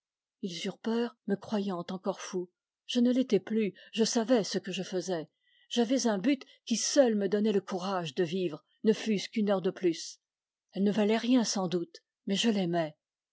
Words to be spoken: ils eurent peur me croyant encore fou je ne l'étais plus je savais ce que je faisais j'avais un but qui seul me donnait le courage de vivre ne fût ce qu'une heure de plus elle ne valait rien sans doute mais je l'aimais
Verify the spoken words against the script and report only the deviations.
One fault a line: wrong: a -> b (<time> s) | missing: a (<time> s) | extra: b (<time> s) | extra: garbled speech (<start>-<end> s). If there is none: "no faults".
no faults